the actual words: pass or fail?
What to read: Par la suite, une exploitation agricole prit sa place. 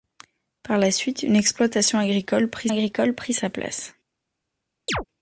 fail